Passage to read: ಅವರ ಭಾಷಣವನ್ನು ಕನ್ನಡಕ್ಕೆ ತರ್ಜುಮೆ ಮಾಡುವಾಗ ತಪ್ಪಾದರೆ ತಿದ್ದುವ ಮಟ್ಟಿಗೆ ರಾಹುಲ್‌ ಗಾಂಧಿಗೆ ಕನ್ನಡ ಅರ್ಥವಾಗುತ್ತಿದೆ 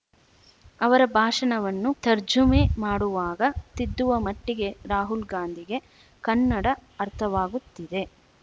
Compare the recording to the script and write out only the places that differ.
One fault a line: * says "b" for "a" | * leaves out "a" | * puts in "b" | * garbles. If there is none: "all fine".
* leaves out "ಕನ್ನಡಕ್ಕೆ"
* leaves out "ತಪ್ಪಾದರೆ"